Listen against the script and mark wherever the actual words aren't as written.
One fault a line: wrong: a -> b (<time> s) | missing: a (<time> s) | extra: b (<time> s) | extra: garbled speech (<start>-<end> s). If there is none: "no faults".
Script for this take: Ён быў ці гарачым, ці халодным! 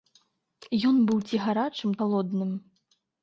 missing: ці (1.9 s)